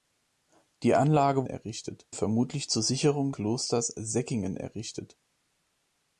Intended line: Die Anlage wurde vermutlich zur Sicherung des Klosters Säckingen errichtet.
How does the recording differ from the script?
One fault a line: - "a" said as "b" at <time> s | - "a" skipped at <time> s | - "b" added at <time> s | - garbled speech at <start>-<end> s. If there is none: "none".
- "wurde" said as "errichtet" at 1.5 s
- "des" skipped at 3.3 s